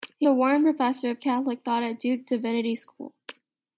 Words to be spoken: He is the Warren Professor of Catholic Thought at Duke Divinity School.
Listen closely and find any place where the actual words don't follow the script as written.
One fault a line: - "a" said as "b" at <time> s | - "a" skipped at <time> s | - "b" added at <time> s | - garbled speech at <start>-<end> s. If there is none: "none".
- "is" skipped at 0.3 s